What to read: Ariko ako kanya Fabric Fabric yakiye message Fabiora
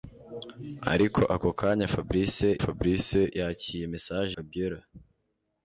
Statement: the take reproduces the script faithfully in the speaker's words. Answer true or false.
true